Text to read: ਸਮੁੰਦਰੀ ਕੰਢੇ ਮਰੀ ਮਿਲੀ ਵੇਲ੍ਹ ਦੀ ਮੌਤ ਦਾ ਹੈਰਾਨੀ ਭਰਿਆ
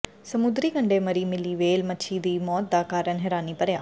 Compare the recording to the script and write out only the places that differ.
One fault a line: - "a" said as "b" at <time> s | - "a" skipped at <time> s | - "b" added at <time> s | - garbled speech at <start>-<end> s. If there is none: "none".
- "ਮੱਛੀ" added at 1.9 s
- "ਕਾਰਨ" added at 2.9 s